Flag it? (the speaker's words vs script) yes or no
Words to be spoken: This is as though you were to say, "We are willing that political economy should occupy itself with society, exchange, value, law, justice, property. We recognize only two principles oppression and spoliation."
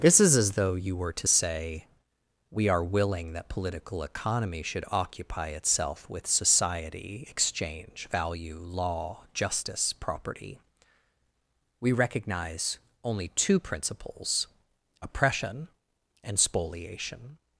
no